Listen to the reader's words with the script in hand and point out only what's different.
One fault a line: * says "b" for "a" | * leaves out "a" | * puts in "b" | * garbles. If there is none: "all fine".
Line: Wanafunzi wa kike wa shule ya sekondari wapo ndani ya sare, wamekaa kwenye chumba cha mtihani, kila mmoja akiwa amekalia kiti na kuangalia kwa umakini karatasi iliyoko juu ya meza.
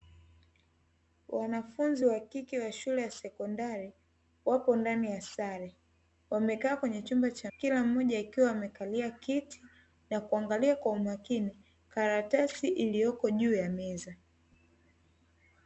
* leaves out "mtihani"